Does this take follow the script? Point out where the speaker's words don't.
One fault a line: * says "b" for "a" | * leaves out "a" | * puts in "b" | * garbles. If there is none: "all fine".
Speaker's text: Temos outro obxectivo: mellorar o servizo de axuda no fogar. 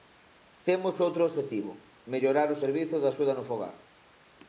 all fine